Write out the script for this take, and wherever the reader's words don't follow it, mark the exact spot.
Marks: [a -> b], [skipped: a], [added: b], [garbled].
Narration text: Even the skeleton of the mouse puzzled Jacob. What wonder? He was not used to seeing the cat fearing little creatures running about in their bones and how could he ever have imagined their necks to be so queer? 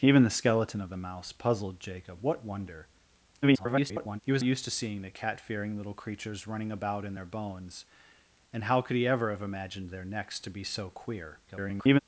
Even the skeleton of the mouse puzzled Jacob. What wonder? [garbled] He was [skipped: not] used to seeing the cat fearing little creatures running about in their bones and how could he ever have imagined their necks to be so queer? [garbled]